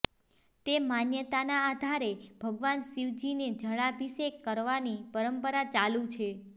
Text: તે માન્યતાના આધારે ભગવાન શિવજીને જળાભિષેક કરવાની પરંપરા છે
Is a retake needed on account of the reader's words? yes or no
yes